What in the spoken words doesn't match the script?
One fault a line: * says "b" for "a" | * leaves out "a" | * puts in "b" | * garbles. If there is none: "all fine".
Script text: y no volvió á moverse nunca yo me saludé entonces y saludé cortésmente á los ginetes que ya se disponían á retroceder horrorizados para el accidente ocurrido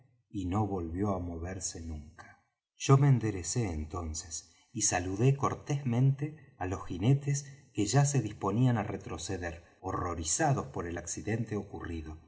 * says "enderecé" for "saludé"
* says "por" for "para"